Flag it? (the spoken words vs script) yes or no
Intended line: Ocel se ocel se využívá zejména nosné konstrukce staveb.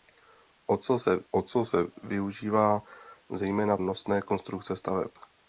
no